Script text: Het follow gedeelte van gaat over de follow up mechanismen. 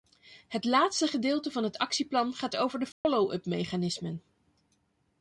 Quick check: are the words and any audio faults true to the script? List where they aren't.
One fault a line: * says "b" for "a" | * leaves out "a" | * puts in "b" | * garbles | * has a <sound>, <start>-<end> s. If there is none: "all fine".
* says "laatste" for "follow"
* puts in "het actieplan"
* has a dropout, 2.9-3.0 s